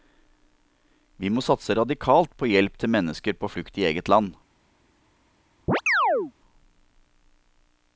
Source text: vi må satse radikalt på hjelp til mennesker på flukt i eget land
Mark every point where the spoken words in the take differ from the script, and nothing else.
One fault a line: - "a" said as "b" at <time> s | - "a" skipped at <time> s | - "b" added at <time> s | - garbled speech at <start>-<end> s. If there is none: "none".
none